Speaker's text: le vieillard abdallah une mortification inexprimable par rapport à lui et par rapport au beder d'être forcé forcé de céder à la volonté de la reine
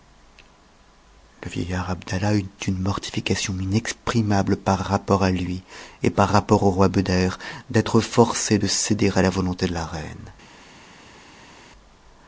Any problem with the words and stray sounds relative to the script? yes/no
yes